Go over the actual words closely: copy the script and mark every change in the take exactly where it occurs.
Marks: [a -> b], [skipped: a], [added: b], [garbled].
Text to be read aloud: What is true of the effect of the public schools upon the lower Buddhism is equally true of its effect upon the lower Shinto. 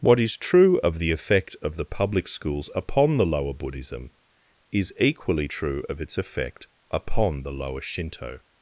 What is true of the effect of the public schools upon the lower Buddhism is equally true of its effect upon the lower Shinto.